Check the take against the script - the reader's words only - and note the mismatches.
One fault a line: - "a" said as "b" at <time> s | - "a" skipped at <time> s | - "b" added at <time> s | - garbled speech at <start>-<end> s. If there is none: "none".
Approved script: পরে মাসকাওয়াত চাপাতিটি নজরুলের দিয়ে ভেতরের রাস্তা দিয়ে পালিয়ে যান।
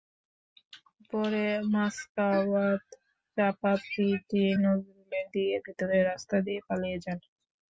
none